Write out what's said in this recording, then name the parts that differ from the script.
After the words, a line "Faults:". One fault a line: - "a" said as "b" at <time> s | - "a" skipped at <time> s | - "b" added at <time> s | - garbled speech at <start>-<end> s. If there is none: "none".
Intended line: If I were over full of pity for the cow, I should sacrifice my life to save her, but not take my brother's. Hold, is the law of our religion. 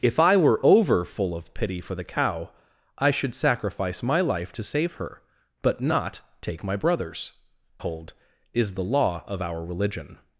If I were over full of pity for the cow, I should sacrifice my life to save her, but not take my brother's. Hold, is the law of our religion.
Faults:
none